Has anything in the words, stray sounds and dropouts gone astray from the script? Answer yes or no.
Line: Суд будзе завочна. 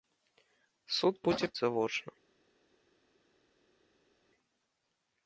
no